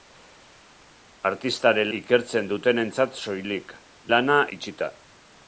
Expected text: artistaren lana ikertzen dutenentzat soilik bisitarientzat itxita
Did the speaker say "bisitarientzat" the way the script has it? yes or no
no